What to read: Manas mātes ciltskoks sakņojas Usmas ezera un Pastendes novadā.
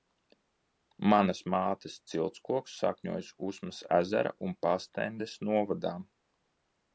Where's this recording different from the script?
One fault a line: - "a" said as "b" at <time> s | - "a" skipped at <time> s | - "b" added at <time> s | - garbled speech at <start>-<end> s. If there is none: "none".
none